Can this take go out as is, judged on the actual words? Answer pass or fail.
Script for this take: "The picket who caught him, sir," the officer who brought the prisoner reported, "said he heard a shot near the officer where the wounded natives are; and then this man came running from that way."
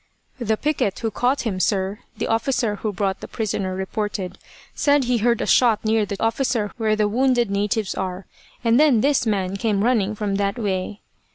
pass